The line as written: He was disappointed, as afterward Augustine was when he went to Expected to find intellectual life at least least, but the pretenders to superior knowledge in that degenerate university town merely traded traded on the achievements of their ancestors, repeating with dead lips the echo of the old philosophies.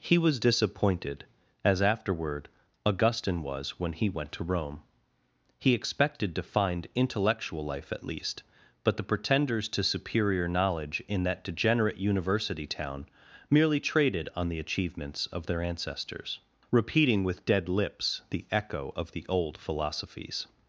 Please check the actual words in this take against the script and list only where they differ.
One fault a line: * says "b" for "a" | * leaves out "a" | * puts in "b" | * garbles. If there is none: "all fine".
* puts in "Rome He"
* leaves out "least"
* leaves out "traded"